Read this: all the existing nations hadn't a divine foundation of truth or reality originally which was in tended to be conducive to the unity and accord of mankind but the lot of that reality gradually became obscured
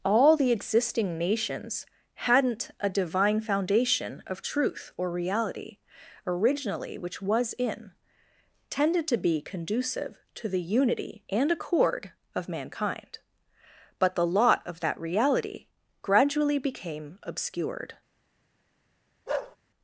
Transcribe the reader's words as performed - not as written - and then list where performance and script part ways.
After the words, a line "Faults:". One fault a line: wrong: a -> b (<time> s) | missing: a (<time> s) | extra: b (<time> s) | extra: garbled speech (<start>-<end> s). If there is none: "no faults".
all the existing nations hadn't a divine foundation of truth or reality originally which was in tended to be conducive to the unity and accord of mankind but the lot of that reality gradually became obscured
Faults:
no faults